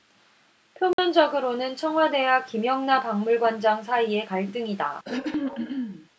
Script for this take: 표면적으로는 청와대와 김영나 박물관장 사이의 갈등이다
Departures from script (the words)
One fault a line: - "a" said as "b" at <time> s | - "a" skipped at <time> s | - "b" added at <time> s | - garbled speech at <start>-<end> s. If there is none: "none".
none